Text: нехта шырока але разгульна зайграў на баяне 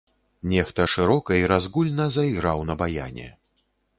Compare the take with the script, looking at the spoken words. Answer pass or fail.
fail